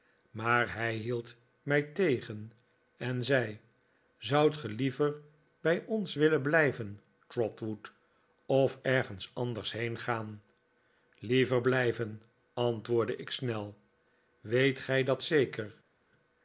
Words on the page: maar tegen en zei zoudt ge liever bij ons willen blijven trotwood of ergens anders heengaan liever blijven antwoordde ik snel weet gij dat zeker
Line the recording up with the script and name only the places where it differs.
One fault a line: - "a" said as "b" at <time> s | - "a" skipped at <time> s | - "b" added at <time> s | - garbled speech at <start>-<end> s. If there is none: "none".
- "hij hield mij" added at 0.7 s